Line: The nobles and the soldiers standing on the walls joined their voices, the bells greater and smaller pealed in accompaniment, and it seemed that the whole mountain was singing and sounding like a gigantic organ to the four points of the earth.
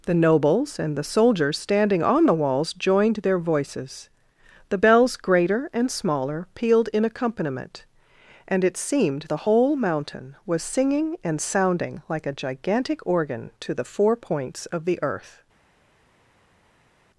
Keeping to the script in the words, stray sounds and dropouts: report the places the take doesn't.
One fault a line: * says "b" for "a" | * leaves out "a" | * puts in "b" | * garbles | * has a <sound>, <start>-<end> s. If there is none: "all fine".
* leaves out "that"